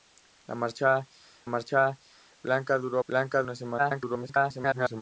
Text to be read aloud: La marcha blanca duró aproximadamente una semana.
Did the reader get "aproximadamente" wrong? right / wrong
wrong